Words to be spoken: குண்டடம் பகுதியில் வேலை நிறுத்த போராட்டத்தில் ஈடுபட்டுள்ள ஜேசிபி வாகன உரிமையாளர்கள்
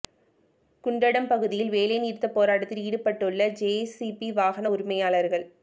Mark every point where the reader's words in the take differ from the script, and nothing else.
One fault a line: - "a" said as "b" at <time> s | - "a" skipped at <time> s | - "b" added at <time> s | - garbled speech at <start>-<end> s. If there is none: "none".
none